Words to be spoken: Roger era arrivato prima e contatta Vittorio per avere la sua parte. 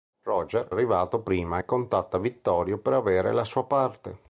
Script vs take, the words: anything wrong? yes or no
yes